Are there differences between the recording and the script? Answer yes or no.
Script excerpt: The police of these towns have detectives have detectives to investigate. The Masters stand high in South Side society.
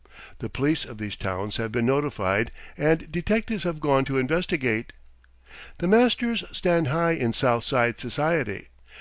yes